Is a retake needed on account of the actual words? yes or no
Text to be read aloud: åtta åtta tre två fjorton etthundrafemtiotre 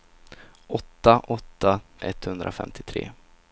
yes